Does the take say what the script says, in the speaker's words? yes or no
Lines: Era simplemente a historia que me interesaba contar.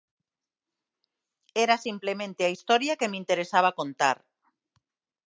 yes